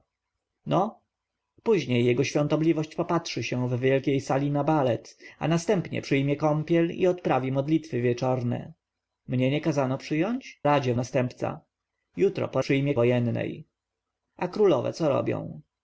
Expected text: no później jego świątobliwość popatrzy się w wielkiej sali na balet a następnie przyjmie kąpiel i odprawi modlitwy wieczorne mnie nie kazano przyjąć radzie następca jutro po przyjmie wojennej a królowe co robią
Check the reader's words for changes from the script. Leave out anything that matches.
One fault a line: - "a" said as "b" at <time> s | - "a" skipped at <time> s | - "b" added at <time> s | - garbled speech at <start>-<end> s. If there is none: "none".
none